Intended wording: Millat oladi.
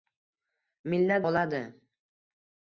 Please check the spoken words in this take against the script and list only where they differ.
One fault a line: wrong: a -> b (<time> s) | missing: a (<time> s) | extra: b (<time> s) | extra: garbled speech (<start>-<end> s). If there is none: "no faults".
no faults